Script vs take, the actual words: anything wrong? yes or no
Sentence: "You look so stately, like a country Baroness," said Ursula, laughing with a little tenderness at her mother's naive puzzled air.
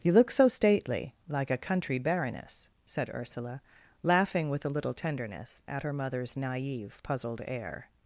no